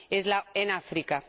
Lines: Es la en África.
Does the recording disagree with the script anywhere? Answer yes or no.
no